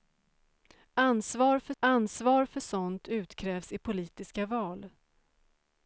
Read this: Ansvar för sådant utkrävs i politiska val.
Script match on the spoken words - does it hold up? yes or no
no